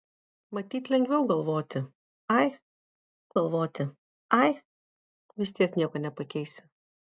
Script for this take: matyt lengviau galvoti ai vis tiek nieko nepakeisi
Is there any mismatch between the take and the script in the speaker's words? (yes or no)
yes